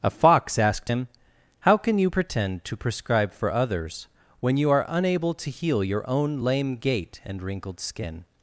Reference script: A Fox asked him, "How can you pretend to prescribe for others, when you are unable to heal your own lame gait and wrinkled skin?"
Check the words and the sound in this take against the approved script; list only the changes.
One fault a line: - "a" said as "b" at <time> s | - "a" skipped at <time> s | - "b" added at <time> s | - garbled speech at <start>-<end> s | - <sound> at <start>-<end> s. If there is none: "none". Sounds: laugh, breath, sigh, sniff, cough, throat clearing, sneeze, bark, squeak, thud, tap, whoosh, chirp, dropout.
none